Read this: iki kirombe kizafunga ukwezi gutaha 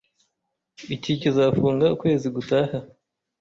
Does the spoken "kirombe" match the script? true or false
false